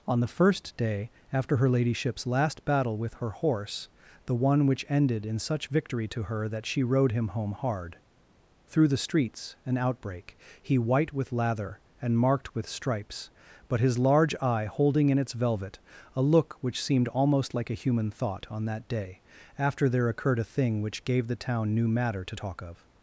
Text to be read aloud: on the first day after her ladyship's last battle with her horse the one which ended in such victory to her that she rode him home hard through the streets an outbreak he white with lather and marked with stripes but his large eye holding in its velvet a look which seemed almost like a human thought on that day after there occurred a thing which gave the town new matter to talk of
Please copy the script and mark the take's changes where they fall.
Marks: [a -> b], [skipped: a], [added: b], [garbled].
on the first day after her ladyship's last battle with her horse the one which ended in such victory to her that she rode him home hard through the streets an outbreak he white with lather and marked with stripes but his large eye holding in its velvet a look which seemed almost like a human thought on that day after there occurred a thing which gave the town new matter to talk of